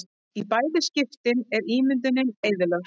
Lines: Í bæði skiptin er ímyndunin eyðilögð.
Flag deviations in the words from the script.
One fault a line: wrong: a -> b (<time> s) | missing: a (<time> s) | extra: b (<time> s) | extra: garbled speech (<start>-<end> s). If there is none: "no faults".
no faults